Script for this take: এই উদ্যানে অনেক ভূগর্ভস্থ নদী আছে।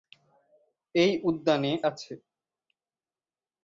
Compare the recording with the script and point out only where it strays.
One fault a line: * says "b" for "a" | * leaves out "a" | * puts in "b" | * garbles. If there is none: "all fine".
* leaves out "অনেক ভূগর্ভস্থ নদী"